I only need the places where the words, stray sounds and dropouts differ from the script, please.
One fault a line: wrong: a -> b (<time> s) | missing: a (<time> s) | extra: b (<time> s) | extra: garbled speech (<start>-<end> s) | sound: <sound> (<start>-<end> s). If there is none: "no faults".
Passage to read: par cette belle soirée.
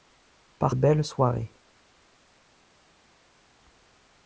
missing: cette (0.8 s)